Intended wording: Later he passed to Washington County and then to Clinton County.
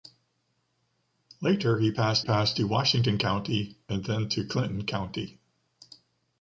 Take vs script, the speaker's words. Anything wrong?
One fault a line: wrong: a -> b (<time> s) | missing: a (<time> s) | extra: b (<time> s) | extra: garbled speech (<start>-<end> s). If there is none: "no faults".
extra: passed (2.2 s)